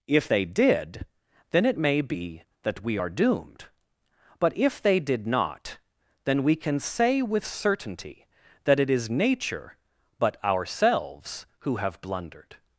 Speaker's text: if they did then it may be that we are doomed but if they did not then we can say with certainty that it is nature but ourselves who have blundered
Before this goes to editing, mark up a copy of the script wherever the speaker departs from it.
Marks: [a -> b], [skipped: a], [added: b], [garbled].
if they did then it may be that we are doomed but if they did not then we can say with certainty that it is nature but ourselves who have blundered